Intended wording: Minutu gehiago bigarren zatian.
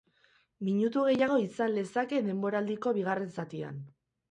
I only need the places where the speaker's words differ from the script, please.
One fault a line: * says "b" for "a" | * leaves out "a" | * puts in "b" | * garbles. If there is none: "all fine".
* puts in "izan lezake denboraldiko"